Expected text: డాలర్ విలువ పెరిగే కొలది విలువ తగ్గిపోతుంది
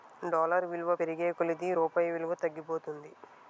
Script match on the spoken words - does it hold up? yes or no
no